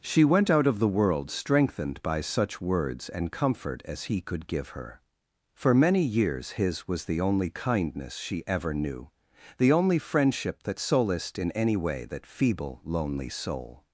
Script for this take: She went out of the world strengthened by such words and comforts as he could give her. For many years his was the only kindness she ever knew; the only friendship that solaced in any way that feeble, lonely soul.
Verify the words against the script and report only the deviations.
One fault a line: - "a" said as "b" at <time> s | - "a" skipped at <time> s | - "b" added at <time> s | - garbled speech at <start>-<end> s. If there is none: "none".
- "comforts" said as "comfort" at 3.3 s